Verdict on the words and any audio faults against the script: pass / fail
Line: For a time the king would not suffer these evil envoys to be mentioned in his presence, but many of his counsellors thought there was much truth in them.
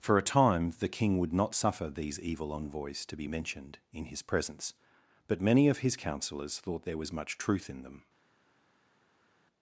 pass